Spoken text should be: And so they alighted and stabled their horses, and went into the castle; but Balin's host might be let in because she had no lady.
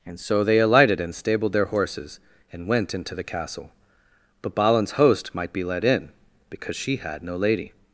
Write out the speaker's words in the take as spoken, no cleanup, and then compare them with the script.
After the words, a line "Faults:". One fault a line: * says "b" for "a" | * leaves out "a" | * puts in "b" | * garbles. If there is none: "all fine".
And so they alighted and stabled their horses, and went into the castle; but Balin's host might be let in because she had no lady.
Faults:
all fine